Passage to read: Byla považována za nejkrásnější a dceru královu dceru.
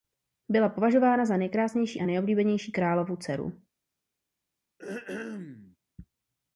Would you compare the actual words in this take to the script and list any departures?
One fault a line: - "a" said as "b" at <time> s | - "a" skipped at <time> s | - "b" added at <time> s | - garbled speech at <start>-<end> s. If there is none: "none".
- "dceru" said as "nejoblíbenější" at 2.0 s